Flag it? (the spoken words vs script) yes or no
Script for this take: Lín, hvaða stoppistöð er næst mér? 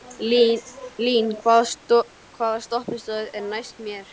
no